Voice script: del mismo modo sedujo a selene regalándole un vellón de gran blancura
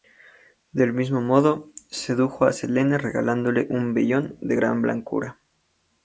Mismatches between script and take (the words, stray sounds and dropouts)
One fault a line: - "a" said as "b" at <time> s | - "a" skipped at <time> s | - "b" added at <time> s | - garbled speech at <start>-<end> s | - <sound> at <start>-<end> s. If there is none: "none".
none